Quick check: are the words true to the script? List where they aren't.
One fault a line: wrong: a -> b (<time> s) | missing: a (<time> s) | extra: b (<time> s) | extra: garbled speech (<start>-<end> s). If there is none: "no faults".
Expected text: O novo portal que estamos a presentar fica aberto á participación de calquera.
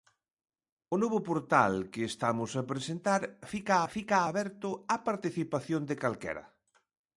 extra: fica (3.9 s)